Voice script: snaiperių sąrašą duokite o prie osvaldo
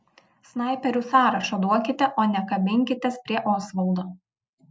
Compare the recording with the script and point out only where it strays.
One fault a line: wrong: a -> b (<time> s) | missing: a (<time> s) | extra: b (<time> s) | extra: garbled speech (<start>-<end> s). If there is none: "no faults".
extra: ne kabinkitės (2.3 s)